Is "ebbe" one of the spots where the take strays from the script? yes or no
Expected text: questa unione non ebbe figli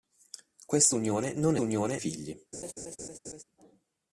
yes